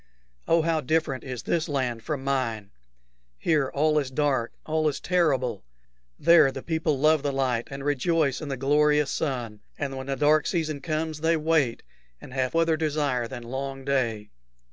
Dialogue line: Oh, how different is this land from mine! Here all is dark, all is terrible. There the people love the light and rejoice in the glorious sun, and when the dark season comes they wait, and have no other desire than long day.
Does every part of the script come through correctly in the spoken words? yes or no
no